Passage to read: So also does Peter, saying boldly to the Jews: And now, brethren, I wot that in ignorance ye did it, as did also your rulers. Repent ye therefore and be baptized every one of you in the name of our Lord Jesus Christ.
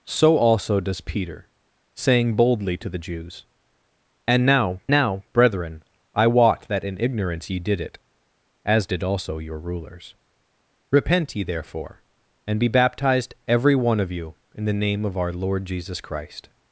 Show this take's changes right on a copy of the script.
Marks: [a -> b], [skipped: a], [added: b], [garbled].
So also does Peter, saying boldly to the Jews: And now, [added: now] brethren, I wot that in ignorance ye did it, as did also your rulers. Repent ye therefore and be baptized every one of you in the name of our Lord Jesus Christ.